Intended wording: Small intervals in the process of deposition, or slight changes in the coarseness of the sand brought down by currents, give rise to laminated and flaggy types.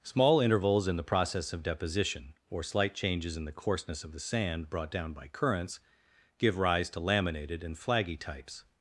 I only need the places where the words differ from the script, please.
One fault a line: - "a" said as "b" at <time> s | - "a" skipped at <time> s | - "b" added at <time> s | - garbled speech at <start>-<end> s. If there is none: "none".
none